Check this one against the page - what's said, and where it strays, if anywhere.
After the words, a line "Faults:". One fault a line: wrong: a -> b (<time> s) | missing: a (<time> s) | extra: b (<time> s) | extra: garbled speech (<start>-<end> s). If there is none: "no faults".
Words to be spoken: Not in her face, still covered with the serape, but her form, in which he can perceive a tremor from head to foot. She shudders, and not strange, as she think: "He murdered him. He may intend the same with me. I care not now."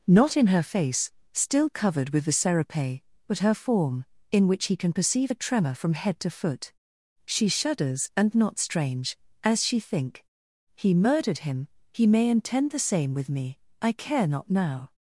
Not in her face, still covered with the serape, but her form, in which he can perceive a tremor from head to foot. She shudders, and not strange, as she think: "He murdered him. He may intend the same with me. I care not now."
Faults:
no faults